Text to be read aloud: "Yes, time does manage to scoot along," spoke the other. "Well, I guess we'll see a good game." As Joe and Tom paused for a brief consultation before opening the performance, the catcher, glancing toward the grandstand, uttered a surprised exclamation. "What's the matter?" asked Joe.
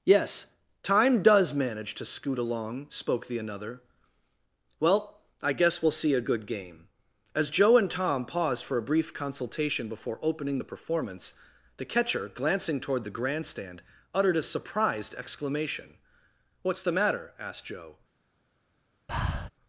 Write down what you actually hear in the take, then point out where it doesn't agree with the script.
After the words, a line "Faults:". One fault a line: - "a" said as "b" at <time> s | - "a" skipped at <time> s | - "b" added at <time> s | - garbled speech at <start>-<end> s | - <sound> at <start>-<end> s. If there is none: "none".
"Yes, time does manage to scoot along," spoke the another. "Well, I guess we'll see a good game." As Joe and Tom paused for a brief consultation before opening the performance, the catcher, glancing toward the grandstand, uttered a surprised exclamation. "What's the matter?" asked Joe.
Faults:
- "other" said as "another" at 3.4 s
- breath at 19.1-19.5 s